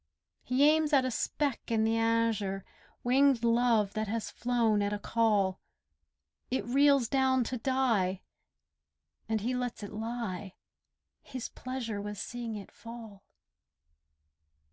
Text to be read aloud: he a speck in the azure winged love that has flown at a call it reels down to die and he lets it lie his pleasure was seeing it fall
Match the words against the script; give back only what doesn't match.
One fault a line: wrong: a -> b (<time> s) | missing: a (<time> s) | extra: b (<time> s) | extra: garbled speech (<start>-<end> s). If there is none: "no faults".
extra: aims at (0.7 s)